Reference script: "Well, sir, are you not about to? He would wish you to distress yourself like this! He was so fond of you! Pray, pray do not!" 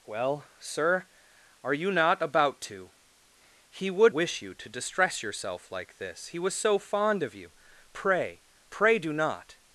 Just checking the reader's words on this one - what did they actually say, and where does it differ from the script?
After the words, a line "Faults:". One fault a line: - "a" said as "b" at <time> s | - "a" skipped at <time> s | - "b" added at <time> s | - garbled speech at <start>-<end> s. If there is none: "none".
"Well, sir, are you not about to? He would wish you to distress yourself like this! He was so fond of you! Pray, pray do not!"
Faults:
none